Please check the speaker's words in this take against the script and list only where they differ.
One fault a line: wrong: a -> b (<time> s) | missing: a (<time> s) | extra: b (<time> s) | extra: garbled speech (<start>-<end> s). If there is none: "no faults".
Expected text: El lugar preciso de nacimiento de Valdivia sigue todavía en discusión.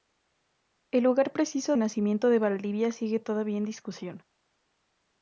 missing: de (1.8 s)